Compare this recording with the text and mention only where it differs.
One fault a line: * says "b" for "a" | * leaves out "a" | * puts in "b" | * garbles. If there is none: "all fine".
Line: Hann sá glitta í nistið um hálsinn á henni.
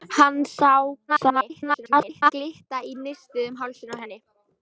* garbles